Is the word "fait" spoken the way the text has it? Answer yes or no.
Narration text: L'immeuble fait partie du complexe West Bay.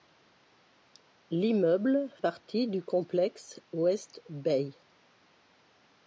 no